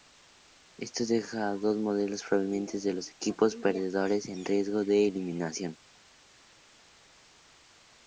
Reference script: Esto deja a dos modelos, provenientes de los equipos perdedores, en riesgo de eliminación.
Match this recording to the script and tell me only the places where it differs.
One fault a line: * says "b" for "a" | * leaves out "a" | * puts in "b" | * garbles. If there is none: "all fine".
all fine